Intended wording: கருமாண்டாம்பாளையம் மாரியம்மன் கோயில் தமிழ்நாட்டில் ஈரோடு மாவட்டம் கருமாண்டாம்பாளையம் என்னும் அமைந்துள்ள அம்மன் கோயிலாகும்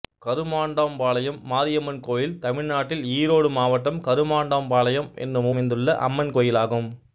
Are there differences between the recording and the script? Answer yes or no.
no